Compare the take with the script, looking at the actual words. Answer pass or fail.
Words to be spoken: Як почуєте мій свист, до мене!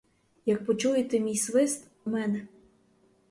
fail